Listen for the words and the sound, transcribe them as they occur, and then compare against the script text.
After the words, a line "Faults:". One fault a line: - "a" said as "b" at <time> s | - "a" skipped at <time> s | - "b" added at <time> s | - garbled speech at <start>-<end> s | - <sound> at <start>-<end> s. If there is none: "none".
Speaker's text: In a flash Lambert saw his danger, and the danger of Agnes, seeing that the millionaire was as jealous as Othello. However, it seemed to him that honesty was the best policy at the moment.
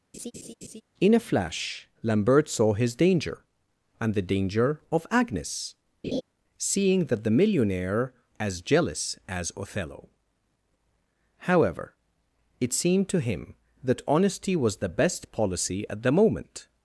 In a flash Lambert saw his danger, and the danger of Agnes, seeing that the millionaire as jealous as Othello. However, it seemed to him that honesty was the best policy at the moment.
Faults:
- laugh at 0.1-0.8 s
- laugh at 6.0-6.2 s
- "was" skipped at 8.1 s